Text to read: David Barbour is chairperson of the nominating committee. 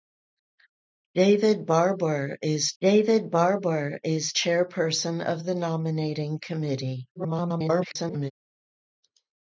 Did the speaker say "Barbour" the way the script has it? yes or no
yes